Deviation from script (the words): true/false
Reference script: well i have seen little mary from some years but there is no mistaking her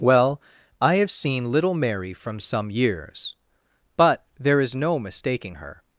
false